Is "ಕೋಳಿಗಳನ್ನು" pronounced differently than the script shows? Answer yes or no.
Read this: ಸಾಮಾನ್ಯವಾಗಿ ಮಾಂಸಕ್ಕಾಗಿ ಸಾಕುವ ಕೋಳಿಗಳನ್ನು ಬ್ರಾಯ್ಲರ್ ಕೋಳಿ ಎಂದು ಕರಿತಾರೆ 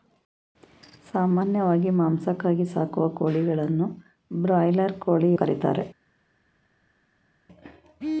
no